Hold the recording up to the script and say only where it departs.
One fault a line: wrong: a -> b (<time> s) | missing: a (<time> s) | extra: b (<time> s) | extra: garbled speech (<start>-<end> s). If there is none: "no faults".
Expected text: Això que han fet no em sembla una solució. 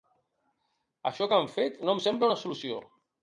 no faults